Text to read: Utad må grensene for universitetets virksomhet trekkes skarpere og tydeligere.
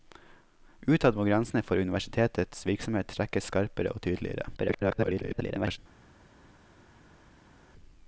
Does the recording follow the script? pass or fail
fail